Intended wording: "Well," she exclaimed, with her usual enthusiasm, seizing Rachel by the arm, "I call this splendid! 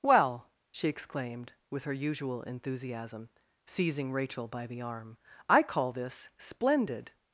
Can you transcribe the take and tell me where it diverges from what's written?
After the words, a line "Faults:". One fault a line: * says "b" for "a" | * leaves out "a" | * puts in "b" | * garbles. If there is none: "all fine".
"Well," she exclaimed, with her usual enthusiasm, seizing Rachel by the arm, "I call this splendid!
Faults:
all fine